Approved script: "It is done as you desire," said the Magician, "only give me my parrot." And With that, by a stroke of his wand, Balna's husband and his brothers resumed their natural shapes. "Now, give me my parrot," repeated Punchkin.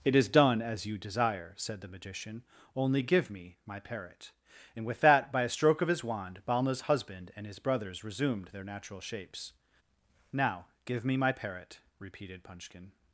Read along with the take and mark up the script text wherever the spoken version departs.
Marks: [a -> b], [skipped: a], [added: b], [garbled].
"It is done as you desire," said the Magician, "only give me my parrot." And With that, by a stroke of his wand, Balna's husband and his brothers resumed their natural shapes. "Now, give me my parrot," repeated Punchkin.